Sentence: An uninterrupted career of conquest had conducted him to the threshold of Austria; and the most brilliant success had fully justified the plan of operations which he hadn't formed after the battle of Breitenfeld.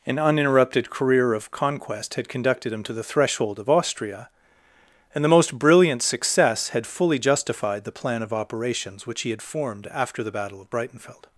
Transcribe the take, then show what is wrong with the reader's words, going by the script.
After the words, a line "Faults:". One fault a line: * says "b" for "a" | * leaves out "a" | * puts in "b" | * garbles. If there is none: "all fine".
An uninterrupted career of conquest had conducted him to the threshold of Austria; and the most brilliant success had fully justified the plan of operations which he had formed after the battle of Breitenfeld.
Faults:
* says "had" for "hadn't"